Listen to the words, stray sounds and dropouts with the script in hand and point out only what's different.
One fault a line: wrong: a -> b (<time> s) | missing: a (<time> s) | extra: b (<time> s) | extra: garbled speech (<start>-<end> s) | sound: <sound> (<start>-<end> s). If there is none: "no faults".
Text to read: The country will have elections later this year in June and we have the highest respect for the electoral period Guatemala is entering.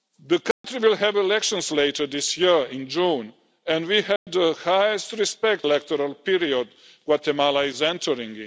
sound: dropout (0.5-0.6 s)
sound: dropout (4.2-4.3 s)
missing: for the (5.7 s)